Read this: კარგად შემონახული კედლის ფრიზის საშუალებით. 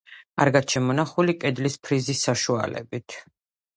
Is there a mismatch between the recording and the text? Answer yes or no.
no